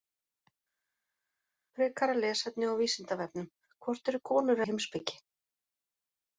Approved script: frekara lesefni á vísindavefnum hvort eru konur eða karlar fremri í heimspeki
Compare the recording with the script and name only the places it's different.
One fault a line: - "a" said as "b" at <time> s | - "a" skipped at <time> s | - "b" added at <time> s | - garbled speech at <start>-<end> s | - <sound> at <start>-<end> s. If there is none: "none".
- "eða karlar fremri" skipped at 4.7 s